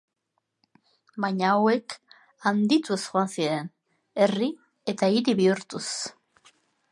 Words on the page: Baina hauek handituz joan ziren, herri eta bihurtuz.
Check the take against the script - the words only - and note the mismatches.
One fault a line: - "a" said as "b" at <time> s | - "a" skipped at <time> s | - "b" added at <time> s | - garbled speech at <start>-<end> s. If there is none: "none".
- "hiri" added at 5.2 s